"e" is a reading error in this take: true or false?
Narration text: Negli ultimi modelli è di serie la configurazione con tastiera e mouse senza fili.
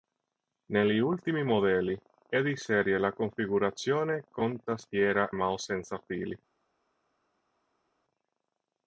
true